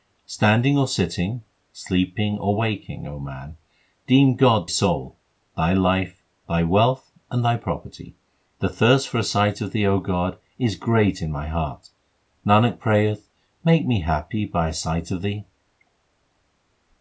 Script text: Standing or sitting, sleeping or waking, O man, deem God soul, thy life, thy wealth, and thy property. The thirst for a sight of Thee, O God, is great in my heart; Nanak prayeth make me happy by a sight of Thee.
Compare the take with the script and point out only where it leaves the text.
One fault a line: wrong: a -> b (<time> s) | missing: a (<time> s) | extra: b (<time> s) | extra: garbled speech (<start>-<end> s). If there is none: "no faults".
no faults